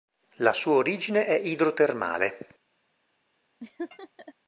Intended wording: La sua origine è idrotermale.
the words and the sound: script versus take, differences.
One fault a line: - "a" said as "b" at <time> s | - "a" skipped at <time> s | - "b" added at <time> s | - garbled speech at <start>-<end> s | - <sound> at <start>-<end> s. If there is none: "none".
- laugh at 3.6-4.3 s